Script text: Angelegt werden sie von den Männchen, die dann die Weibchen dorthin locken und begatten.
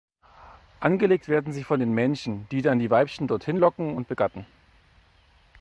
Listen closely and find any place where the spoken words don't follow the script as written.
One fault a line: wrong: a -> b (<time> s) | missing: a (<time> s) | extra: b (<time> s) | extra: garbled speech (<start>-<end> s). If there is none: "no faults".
no faults